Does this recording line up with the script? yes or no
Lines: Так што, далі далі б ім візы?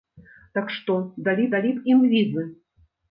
yes